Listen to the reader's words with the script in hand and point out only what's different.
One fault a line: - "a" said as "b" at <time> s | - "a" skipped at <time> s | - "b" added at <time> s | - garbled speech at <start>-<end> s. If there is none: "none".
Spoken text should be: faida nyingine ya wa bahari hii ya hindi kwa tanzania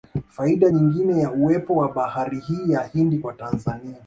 - "uwepo" added at 1.3 s